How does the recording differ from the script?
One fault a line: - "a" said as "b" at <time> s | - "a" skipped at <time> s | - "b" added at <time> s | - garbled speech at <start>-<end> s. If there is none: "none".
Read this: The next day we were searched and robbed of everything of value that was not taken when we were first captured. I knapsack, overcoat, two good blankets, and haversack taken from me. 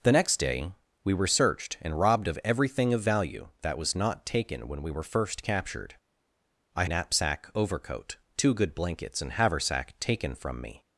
none